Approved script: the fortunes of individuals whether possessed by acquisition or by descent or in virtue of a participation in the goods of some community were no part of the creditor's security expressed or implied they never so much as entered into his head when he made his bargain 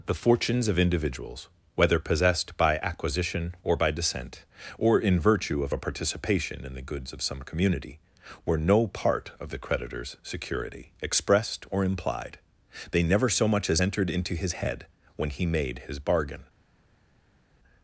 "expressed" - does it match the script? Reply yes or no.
yes